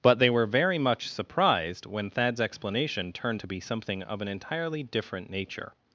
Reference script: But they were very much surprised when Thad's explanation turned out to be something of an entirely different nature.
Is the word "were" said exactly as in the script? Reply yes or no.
yes